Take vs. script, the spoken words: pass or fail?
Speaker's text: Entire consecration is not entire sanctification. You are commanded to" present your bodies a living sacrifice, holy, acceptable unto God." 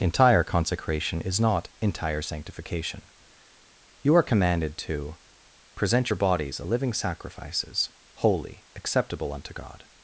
fail